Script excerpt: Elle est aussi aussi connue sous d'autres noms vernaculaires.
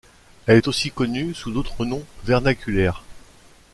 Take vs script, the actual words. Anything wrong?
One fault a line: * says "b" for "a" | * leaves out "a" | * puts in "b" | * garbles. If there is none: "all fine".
* leaves out "aussi"